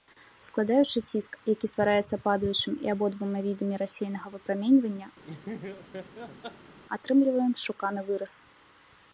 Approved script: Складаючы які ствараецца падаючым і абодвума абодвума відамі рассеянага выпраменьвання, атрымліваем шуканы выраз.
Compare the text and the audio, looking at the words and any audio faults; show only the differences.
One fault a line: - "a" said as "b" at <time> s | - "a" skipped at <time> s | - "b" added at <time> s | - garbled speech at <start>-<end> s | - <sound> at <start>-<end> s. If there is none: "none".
- "ціск" added at 1.1 s
- "абодвума" skipped at 3.4 s
- laugh at 5.2-6.8 s